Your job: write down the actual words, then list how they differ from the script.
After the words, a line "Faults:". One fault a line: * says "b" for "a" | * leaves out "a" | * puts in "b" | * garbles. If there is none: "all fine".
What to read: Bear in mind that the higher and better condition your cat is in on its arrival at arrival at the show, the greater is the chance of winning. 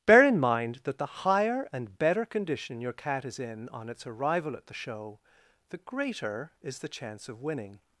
Bear in mind that the higher and better condition your cat is in on its arrival at the show, the greater is the chance of winning.
Faults:
* leaves out "arrival at"